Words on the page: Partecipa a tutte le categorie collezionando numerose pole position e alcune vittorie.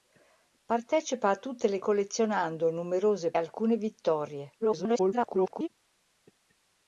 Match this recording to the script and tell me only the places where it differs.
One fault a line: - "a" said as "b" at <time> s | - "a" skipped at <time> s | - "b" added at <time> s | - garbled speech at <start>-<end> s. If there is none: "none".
- "categorie" skipped at 1.8 s
- "pole position e" skipped at 3.3 s
- garbled speech at 4.6-5.7 s